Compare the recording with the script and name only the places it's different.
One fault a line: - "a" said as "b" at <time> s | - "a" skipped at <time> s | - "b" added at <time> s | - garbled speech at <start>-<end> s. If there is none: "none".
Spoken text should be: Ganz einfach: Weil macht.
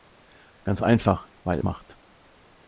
none